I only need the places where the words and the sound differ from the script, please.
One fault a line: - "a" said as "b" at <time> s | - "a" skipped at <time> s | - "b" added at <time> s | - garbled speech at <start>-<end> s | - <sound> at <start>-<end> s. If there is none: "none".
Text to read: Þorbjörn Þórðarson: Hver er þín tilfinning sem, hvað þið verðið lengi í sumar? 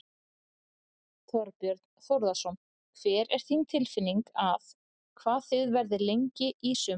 - "sem" said as "að" at 4.5 s